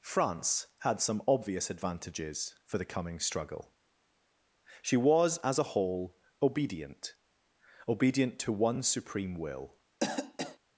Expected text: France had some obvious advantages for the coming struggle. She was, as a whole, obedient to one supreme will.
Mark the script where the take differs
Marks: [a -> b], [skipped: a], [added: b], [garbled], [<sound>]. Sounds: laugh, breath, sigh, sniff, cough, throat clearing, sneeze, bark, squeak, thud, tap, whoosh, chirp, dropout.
France had some obvious advantages for the coming struggle. She was, as a whole, obedient [added: obedient] to one supreme will. [cough]